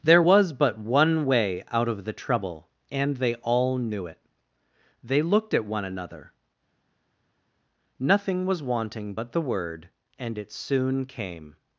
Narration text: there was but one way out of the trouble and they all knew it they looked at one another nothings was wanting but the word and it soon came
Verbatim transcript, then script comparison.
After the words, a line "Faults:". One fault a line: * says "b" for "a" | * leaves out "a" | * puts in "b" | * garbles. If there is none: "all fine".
there was but one way out of the trouble and they all knew it they looked at one another nothing was wanting but the word and it soon came
Faults:
* says "nothing" for "nothings"